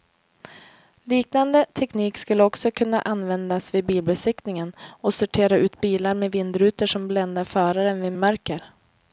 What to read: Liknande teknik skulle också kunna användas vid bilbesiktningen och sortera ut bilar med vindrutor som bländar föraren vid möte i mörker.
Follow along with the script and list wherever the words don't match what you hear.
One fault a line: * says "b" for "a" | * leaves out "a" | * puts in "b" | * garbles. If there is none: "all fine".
* leaves out "möte"